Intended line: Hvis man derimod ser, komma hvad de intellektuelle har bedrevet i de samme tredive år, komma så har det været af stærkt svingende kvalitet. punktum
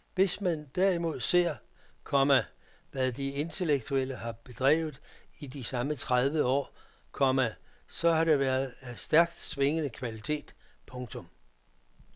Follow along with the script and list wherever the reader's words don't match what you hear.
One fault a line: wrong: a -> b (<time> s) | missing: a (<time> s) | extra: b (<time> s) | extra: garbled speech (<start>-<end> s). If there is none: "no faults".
no faults